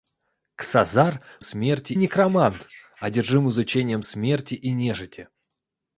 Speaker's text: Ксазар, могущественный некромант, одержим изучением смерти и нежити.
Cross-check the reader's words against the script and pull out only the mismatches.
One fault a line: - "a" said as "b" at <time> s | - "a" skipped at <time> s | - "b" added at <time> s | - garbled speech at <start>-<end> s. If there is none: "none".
- "могущественный" said as "смерти" at 1.4 s